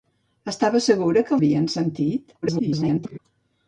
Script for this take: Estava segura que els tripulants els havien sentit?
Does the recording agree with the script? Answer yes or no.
no